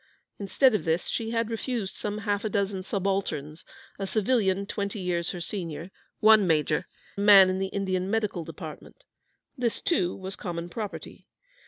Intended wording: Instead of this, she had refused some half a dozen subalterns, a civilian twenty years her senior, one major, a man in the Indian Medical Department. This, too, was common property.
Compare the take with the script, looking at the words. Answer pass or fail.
pass